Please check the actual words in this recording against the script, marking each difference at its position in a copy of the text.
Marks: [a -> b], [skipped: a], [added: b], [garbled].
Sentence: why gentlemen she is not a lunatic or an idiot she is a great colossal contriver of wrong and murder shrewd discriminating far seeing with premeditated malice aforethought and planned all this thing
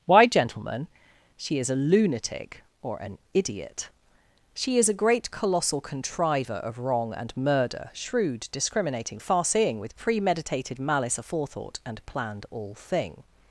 why gentlemen she is [skipped: not] a lunatic or an idiot she is a great colossal contriver of wrong and murder shrewd discriminating far seeing with premeditated malice aforethought and planned all [skipped: this] thing